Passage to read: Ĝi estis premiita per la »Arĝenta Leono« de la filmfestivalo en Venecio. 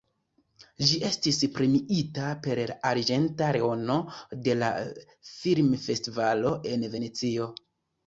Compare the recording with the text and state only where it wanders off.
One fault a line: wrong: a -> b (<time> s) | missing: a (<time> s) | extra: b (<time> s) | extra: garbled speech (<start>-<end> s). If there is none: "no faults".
no faults